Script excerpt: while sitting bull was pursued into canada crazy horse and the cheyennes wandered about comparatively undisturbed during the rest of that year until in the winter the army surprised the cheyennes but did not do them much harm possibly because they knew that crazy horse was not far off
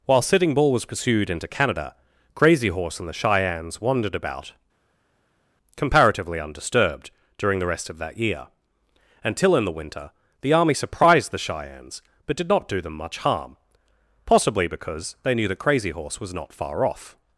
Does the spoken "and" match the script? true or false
true